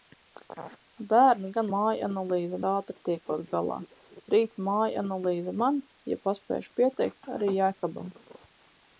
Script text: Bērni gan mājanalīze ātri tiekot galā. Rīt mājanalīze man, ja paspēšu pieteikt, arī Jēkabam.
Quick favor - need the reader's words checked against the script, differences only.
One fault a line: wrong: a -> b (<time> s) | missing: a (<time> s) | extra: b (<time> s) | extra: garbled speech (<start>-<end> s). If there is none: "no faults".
no faults